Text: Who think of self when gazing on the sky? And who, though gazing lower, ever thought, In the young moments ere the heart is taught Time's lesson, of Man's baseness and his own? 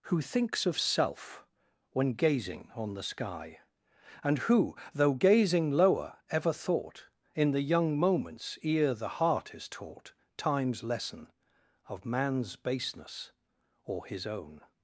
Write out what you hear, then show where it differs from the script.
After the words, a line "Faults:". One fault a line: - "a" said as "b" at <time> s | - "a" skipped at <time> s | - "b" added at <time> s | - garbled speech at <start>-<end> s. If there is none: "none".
Who thinks of self when gazing on the sky? And who, though gazing lower, ever thought, In the young moments ere the heart is taught Time's lesson, of Man's baseness or his own?
Faults:
- "think" said as "thinks" at 0.2 s
- "and" said as "or" at 13.8 s